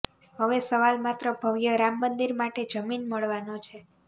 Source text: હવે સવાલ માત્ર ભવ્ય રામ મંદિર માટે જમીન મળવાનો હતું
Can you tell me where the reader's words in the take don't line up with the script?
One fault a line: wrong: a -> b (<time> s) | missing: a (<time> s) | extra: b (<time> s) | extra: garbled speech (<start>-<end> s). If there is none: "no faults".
wrong: હતું -> છે (3.6 s)